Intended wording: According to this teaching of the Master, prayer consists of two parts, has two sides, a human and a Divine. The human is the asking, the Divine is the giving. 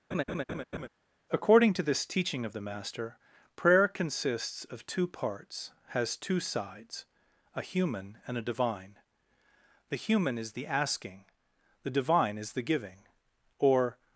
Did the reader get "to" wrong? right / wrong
right